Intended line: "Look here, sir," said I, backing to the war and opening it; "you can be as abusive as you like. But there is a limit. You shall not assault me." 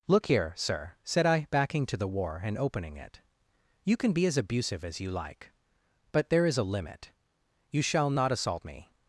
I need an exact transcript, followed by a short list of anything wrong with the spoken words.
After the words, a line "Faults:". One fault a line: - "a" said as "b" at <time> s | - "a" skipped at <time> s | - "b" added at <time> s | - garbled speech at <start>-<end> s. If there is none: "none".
"Look here, sir," said I, backing to the war and opening it; "you can be as abusive as you like. But there is a limit. You shall not assault me."
Faults:
none